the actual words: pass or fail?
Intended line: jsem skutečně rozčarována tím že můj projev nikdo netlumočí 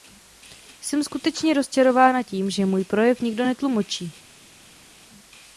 pass